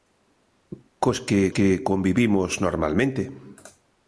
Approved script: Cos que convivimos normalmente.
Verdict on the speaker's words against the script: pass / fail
fail